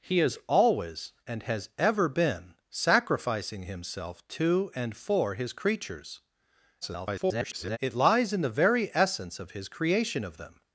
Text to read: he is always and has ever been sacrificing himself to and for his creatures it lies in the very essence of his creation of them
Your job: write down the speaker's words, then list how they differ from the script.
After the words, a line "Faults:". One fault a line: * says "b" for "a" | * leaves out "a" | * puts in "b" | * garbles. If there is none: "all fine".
he is always and has ever been sacrificing himself to and for his creatures [garbled] it lies in the very essence of his creation of them
Faults:
* garbles